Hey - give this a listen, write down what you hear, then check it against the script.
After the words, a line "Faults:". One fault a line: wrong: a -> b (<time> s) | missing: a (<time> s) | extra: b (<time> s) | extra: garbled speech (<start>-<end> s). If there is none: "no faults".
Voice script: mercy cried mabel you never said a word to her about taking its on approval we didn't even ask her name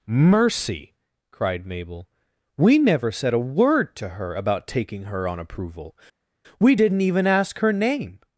mercy cried mabel we never said a word to her about taking her on approval we didn't even ask her name
Faults:
wrong: you -> we (2.6 s)
wrong: its -> her (5.0 s)